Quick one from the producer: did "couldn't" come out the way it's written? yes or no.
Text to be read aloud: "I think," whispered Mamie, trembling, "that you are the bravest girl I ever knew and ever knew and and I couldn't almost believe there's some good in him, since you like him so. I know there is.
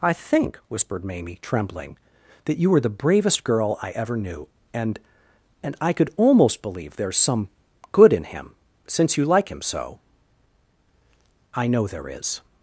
no